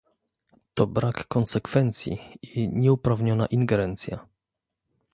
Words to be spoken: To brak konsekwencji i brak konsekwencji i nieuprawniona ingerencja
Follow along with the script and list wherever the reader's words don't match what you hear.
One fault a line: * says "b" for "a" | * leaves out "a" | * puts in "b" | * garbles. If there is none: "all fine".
* leaves out "brak konsekwencji i"